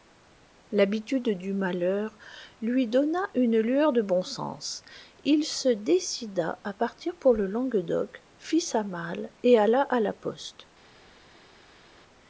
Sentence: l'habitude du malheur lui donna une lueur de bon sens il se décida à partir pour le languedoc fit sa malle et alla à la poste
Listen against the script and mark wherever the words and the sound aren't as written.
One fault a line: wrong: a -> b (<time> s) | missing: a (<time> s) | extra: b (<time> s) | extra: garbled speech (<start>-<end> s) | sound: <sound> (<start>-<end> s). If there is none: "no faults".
no faults